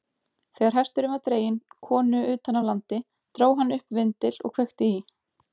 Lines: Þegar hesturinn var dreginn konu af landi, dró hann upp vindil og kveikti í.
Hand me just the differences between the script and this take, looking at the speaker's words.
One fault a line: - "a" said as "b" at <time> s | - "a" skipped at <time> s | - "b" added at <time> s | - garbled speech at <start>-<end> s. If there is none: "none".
- "utan" added at 2.3 s